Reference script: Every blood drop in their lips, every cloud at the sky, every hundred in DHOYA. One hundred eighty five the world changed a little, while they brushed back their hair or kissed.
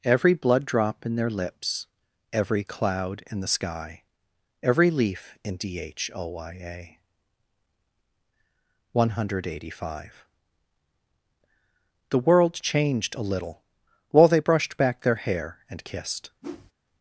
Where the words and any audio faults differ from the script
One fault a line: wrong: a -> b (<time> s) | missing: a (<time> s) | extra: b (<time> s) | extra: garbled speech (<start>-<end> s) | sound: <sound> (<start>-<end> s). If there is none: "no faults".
wrong: at -> in (3.3 s)
wrong: hundred -> leaf (4.9 s)
wrong: or -> and (15.7 s)
sound: whoosh (16.4-16.7 s)